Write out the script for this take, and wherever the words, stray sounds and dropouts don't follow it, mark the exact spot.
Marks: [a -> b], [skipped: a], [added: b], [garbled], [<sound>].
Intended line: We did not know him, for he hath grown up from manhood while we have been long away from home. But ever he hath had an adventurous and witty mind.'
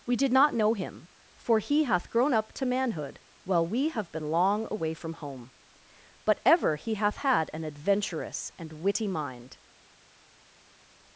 We did not know him, for he hath grown up [from -> to] manhood while we have been long away from home. But ever he hath had an adventurous and witty mind.'